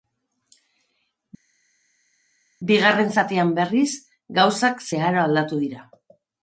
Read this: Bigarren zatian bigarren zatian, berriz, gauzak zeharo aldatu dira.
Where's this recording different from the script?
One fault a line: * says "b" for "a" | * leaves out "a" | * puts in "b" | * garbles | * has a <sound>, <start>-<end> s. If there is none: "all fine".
* leaves out "bigarren zatian"